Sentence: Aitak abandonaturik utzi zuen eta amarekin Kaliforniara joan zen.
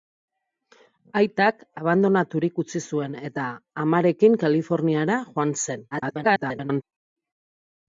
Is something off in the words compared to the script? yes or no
yes